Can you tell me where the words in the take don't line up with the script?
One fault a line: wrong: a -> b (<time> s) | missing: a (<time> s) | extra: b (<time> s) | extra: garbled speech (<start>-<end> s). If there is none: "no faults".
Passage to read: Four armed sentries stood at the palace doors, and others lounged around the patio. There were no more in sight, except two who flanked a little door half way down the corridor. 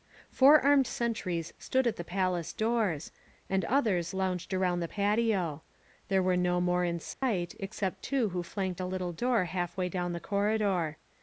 no faults